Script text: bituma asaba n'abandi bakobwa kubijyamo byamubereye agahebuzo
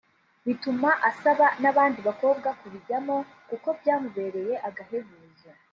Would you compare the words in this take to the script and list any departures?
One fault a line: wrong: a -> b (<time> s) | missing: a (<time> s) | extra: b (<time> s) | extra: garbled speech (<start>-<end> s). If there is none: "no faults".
extra: kuko (3.5 s)